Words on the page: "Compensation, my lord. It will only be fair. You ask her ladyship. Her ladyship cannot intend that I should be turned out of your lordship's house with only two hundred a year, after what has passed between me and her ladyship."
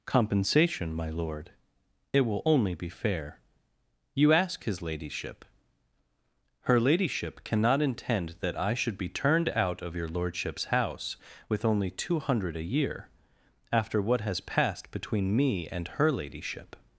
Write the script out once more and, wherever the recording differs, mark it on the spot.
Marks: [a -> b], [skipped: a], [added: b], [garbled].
"Compensation, my lord. It will only be fair. You ask [her -> his] ladyship. Her ladyship cannot intend that I should be turned out of your lordship's house with only two hundred a year, after what has passed between me and her ladyship."